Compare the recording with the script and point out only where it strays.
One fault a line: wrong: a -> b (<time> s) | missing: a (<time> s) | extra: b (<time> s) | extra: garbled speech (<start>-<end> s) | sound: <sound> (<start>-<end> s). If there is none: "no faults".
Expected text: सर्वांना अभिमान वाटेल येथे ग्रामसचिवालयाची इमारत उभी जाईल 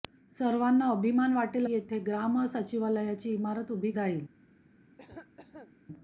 sound: cough (5.0-5.8 s)